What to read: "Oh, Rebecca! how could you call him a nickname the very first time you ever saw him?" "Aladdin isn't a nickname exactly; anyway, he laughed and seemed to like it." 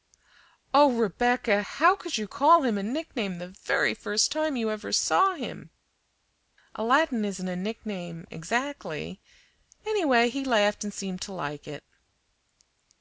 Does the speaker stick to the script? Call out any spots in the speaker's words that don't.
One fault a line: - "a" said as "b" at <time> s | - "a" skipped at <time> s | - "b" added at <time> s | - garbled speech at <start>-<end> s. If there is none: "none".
none